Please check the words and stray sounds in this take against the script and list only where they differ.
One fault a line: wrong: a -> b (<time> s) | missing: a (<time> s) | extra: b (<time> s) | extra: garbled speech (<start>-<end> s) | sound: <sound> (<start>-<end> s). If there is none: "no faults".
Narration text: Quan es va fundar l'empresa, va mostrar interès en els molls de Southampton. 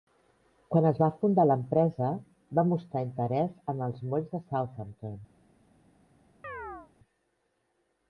sound: chirp (6.4-6.9 s)